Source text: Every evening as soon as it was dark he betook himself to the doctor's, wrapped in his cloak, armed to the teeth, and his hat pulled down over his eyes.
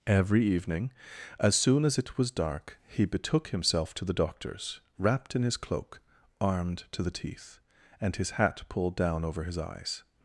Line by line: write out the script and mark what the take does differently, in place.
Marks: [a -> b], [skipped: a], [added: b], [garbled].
Every evening as soon as it was dark he betook himself to the doctor's, wrapped in his cloak, armed to the teeth, and his hat pulled down over his eyes.